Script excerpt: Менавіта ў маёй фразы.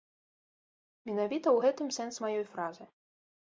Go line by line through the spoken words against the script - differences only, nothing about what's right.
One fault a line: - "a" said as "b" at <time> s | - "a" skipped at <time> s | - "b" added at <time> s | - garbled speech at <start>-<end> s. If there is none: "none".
- "гэтым сэнс" added at 1.7 s